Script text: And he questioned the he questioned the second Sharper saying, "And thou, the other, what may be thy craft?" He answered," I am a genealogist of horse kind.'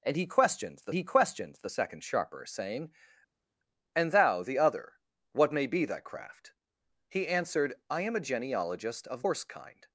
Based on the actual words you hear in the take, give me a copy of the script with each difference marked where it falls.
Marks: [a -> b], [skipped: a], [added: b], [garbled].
And he questioned the he questioned the second Sharper saying, "And thou, the other, what may be thy craft?" He answered," I am a genealogist of horse kind.'